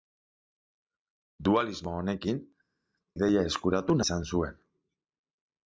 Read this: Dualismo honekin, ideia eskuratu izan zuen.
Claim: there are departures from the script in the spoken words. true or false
false